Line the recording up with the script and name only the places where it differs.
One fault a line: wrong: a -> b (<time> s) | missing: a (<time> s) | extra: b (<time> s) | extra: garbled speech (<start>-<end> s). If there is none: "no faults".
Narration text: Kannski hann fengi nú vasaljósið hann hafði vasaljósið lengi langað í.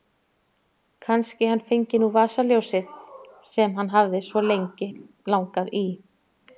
extra: sem (3.5 s)
wrong: vasaljósið -> svo (4.3 s)